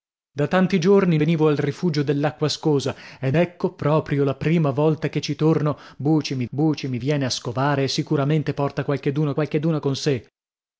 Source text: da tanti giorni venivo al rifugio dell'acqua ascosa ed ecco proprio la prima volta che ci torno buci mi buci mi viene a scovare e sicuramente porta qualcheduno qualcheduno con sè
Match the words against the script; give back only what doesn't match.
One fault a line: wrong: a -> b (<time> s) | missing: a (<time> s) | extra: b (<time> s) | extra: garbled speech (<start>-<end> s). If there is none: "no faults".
no faults